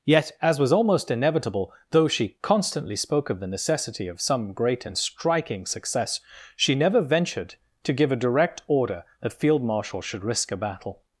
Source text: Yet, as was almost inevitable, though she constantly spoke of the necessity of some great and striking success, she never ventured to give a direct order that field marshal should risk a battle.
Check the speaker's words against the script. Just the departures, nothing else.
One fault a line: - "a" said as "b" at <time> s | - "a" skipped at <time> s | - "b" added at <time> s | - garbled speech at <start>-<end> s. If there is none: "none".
none